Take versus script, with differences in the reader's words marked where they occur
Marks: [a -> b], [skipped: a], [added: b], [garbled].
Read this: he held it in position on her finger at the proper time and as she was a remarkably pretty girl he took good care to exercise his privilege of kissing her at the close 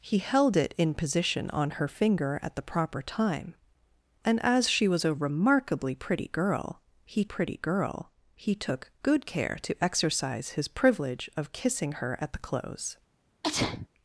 he held it in position on her finger at the proper time and as she was a remarkably pretty girl he [added: pretty girl he] took good care to exercise his privilege of kissing her at the close